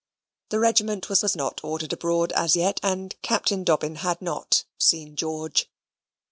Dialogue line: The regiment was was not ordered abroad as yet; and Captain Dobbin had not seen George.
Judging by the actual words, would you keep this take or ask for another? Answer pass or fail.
pass